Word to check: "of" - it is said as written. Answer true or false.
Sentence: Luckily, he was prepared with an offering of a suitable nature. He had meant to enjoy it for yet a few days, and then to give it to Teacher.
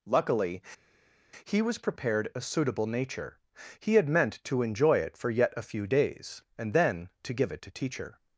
false